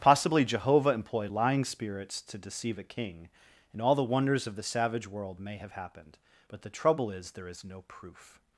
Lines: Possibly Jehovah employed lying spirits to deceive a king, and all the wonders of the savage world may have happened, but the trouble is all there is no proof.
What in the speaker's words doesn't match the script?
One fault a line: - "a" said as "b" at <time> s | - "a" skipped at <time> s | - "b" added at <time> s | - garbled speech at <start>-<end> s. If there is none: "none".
- "all" skipped at 7.3 s